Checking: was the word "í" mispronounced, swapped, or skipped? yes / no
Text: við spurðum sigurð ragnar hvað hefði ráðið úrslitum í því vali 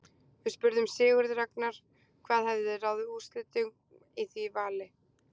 no